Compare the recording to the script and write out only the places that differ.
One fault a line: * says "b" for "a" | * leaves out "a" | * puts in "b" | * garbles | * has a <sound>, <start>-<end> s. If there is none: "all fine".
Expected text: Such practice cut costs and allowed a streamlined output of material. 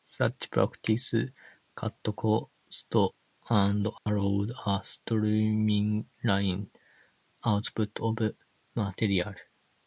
* has a dropout, 4.0-4.1 s